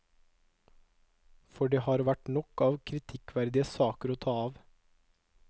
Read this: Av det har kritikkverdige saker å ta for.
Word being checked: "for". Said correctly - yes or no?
no